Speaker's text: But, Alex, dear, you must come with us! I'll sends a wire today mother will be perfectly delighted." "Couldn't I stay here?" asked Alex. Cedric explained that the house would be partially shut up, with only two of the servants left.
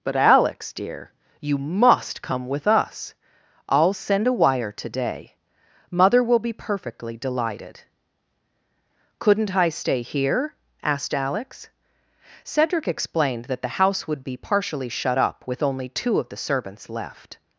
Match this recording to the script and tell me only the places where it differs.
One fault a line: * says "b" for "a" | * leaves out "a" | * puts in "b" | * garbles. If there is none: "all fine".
* says "send" for "sends"